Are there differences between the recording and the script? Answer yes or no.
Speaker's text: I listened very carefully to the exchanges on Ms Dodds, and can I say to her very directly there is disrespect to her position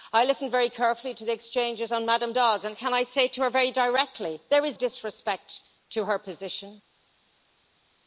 no